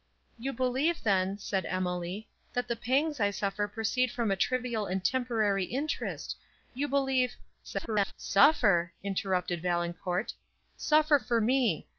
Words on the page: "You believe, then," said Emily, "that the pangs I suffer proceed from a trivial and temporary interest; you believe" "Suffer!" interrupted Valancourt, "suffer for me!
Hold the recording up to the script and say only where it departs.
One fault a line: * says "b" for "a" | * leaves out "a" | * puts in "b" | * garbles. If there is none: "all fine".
* garbles